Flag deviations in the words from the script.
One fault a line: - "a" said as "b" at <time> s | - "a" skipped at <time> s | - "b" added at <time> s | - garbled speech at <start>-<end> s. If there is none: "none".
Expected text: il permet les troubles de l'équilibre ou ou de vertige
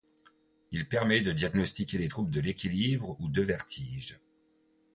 - "de diagnostiquer" added at 1.2 s
- "ou" skipped at 3.3 s